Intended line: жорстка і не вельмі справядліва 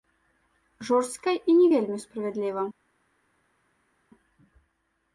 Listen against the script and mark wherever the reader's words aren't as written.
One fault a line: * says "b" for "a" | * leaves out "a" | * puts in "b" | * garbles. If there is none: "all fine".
all fine